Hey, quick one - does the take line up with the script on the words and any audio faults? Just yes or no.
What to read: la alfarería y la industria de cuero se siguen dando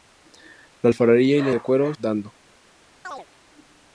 no